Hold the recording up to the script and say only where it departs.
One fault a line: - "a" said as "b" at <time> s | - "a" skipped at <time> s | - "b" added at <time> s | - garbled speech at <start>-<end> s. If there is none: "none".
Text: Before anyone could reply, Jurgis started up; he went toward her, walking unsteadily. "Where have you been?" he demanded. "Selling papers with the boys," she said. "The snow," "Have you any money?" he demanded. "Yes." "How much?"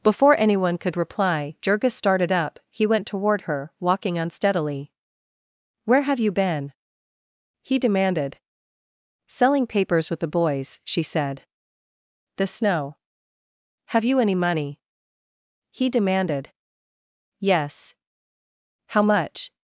none